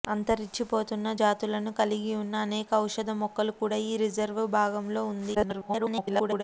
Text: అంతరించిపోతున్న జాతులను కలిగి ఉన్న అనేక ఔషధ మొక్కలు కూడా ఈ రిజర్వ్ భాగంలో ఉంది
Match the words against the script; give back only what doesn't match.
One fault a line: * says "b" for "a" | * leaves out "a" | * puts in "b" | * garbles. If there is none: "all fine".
* garbles